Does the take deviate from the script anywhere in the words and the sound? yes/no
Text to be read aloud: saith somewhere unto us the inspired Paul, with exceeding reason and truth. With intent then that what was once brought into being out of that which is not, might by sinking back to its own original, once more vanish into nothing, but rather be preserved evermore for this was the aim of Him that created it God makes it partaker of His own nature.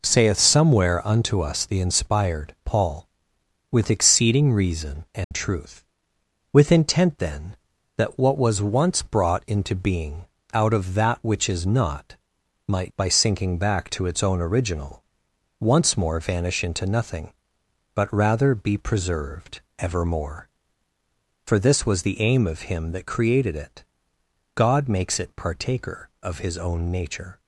yes